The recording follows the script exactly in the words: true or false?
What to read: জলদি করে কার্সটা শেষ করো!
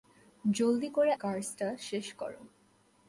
true